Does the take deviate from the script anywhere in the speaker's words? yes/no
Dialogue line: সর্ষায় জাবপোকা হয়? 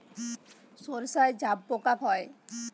no